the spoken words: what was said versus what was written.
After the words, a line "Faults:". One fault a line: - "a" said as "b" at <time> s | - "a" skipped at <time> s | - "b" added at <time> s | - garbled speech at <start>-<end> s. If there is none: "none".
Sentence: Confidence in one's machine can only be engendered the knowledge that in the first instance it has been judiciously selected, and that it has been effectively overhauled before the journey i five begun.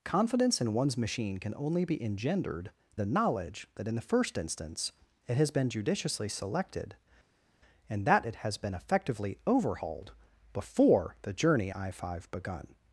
Confidence in one's machine can only be engendered the knowledge that in the first instance it has been judiciously selected, and that it has been effectively overhauled before the journey i five begun.
Faults:
none